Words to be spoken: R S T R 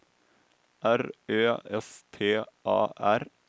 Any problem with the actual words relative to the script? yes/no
yes